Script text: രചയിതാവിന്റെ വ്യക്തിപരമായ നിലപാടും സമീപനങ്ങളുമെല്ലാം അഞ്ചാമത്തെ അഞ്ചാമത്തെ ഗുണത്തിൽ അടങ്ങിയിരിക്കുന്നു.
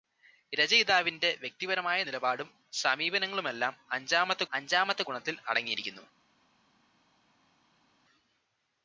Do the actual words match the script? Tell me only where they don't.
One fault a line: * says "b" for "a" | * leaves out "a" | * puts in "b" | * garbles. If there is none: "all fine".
all fine